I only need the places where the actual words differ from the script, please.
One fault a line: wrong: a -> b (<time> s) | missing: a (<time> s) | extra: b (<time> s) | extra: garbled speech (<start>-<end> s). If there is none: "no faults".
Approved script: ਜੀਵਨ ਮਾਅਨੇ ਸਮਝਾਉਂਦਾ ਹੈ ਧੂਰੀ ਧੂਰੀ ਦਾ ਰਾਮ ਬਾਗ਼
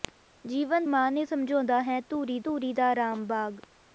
no faults